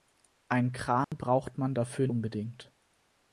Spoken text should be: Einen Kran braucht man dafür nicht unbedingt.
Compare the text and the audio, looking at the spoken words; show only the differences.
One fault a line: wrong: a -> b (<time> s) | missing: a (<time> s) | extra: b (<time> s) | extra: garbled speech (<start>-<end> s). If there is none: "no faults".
missing: nicht (2.1 s)